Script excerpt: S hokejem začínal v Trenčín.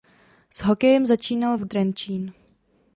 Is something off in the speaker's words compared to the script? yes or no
no